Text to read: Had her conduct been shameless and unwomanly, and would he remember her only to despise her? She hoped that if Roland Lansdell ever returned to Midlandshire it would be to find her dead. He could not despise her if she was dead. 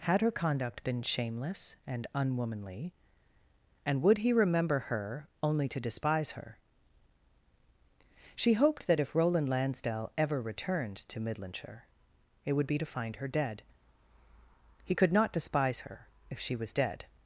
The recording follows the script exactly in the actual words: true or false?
true